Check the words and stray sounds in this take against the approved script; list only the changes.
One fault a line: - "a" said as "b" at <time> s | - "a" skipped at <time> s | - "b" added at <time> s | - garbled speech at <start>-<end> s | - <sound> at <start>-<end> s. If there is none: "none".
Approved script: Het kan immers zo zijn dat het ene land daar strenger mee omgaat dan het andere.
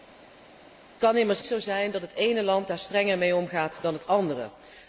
none